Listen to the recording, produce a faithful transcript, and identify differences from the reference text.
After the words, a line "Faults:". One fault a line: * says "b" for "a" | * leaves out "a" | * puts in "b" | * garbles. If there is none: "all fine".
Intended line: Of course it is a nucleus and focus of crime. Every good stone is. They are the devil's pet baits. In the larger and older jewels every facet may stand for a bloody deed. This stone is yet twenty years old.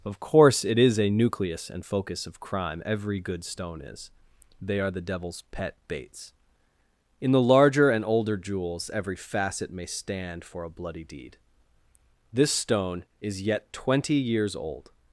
Of course it is a nucleus and focus of crime. Every good stone is. They are the devil's pet baits. In the larger and older jewels every facet may stand for a bloody deed. This stone is yet twenty years old.
Faults:
all fine